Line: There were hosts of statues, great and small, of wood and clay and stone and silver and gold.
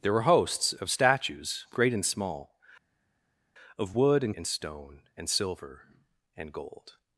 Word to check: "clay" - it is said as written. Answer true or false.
false